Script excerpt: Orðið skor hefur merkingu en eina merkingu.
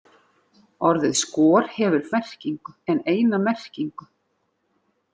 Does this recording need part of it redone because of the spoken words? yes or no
no